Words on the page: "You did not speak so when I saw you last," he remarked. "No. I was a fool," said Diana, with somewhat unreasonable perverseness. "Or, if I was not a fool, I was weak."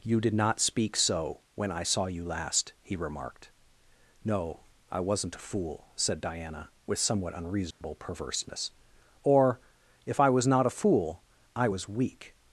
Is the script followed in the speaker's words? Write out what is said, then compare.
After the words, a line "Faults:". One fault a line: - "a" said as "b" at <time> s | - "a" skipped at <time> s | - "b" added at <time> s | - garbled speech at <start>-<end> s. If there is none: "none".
"You did not speak so when I saw you last," he remarked. "No. I wasn't a fool," said Diana, with somewhat unreasonable perverseness. "Or, if I was not a fool, I was weak."
Faults:
- "was" said as "wasn't" at 5.0 s